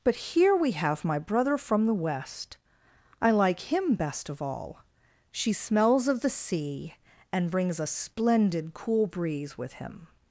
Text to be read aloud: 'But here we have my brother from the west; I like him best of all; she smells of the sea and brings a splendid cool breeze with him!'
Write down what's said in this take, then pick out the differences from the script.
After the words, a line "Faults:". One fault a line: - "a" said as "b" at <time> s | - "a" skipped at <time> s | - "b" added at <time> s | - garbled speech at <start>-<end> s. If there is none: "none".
'But here we have my brother from the west; I like him best of all; she smells of the sea and brings a splendid cool breeze with him!'
Faults:
none